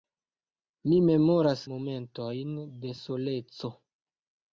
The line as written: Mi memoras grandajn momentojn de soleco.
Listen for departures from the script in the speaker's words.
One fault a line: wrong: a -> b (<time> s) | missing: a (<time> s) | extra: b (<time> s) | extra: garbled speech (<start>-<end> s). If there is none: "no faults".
missing: grandajn (1.6 s)